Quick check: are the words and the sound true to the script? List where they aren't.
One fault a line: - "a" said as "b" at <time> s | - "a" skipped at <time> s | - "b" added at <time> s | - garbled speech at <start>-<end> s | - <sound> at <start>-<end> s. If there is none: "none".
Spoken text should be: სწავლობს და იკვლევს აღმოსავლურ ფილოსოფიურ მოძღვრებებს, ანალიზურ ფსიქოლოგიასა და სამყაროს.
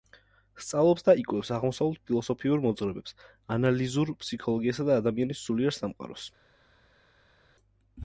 - "ადამიანის სულიერ" added at 5.0 s